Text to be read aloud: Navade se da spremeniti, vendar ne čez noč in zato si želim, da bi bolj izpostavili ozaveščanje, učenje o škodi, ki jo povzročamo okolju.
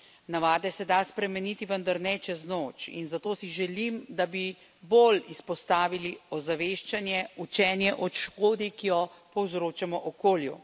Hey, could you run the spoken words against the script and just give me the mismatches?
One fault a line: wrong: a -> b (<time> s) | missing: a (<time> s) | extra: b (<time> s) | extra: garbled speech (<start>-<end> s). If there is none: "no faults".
no faults